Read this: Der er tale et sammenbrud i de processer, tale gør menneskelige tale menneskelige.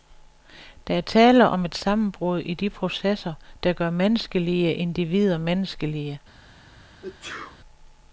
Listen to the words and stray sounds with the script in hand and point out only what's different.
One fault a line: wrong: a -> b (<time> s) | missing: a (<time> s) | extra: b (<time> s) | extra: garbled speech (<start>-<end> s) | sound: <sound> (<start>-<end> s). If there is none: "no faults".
extra: om (1.5 s)
wrong: tale -> der (3.6 s)
wrong: tale -> individer (4.7 s)
sound: sneeze (7.0-7.6 s)